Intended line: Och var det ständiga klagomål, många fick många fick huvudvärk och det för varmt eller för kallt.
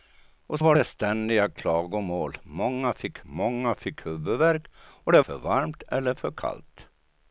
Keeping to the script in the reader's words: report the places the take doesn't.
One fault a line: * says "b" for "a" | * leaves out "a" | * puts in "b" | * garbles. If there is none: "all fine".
all fine